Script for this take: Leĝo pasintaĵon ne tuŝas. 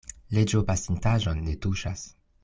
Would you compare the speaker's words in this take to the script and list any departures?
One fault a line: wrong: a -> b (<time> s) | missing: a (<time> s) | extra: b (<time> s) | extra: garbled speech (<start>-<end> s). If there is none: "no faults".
no faults